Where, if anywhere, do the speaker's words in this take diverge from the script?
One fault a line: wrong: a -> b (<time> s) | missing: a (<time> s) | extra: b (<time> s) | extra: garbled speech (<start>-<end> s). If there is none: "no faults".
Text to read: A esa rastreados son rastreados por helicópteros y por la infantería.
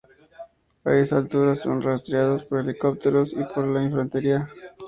wrong: rastreados -> altura (1.2 s)